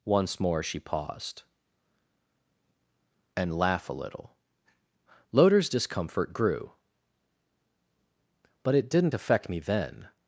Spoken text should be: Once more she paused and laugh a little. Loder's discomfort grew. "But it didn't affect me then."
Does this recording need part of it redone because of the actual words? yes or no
no